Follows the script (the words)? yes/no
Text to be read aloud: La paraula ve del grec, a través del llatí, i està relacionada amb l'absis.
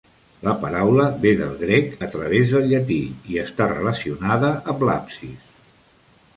yes